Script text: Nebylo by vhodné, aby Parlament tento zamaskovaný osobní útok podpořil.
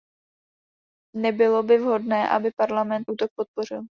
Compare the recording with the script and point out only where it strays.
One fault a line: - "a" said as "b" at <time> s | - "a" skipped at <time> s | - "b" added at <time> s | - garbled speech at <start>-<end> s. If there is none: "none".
- "tento zamaskovaný osobní" skipped at 3.1 s